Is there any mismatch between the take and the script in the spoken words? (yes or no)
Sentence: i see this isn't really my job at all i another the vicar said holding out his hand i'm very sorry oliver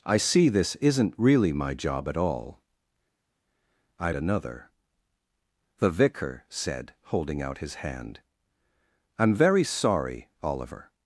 no